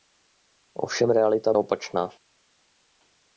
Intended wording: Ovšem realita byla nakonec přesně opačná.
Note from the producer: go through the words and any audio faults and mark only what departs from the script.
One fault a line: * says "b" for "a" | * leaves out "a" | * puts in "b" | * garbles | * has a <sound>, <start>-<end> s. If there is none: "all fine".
* leaves out "byla nakonec přesně"